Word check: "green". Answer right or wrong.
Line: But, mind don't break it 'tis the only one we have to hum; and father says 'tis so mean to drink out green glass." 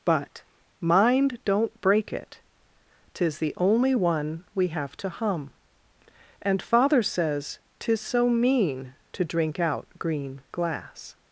right